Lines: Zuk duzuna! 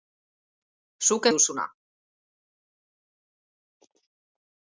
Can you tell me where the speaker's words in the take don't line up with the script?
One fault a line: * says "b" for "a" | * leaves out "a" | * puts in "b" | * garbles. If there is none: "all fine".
all fine